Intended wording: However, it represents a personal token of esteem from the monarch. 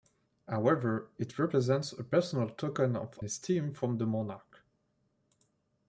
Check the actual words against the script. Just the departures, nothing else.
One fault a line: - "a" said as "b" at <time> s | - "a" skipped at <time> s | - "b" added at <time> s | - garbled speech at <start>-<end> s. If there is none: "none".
none